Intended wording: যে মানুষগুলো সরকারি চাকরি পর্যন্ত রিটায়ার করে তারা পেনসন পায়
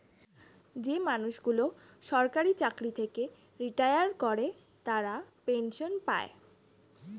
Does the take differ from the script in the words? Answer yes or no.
yes